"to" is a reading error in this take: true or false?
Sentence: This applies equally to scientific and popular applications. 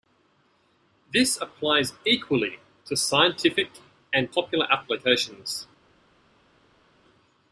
false